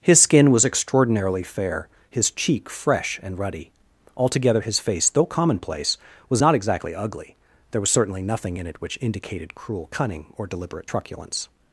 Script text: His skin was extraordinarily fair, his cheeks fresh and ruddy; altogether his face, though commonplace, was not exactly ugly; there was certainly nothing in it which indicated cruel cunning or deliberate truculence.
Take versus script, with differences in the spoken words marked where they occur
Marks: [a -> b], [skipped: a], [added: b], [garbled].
His skin was extraordinarily fair, his [cheeks -> cheek] fresh and ruddy; altogether his face, though commonplace, was not exactly ugly; there was certainly nothing in it which indicated cruel cunning or deliberate truculence.